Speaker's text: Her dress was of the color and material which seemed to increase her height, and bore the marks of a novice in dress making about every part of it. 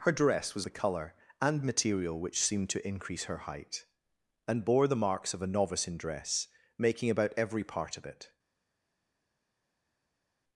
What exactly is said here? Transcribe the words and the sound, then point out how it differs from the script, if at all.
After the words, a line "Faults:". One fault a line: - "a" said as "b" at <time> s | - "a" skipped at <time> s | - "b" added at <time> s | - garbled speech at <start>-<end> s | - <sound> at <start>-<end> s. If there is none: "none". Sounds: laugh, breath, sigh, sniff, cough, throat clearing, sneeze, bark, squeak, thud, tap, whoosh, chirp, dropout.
Her dress was the color and material which seemed to increase her height, and bore the marks of a novice in dress making about every part of it.
Faults:
- "of" skipped at 0.7 s